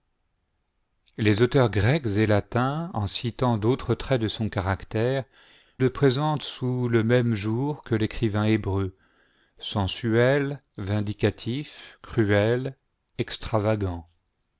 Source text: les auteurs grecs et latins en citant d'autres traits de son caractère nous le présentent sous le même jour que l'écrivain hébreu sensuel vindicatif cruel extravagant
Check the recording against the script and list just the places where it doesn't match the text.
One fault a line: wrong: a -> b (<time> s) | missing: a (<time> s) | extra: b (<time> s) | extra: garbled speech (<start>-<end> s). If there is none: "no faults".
missing: nous (5.2 s)